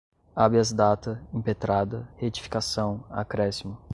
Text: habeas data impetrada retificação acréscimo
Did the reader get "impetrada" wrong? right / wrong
right